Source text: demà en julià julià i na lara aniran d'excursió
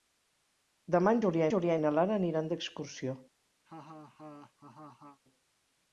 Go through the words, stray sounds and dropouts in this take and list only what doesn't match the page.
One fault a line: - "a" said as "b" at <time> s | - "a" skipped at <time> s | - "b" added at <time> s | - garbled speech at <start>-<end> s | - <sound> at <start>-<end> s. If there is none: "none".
- laugh at 3.6-5.2 s